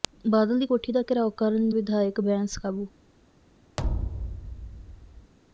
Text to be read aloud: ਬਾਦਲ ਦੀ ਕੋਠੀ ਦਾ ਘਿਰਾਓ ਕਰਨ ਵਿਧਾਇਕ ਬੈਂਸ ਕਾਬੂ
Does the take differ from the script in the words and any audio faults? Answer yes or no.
yes